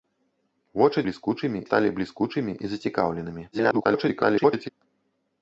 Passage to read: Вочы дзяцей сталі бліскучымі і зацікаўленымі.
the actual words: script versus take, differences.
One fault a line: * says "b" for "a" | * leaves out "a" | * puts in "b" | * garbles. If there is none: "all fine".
* says "бліскучымі" for "дзяцей"
* garbles